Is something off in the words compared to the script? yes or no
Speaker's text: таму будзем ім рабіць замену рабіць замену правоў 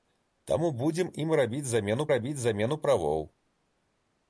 no